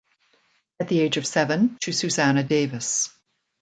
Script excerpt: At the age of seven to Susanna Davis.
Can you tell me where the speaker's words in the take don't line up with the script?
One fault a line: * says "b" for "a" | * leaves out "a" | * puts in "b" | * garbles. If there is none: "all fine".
all fine